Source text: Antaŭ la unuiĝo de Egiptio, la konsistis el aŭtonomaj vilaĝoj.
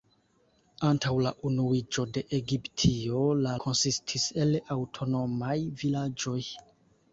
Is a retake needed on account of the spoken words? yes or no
no